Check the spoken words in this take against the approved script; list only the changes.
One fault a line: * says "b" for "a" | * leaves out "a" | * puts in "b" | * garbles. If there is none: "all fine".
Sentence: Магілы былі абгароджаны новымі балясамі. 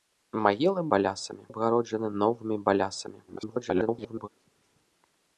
* says "балясамі" for "былі"
* garbles